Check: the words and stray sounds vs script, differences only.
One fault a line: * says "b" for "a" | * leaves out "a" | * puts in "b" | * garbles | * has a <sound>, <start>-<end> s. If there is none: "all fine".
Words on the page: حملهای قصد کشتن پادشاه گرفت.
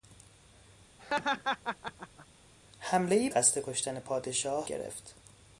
* has a laugh, 1.0-2.3 s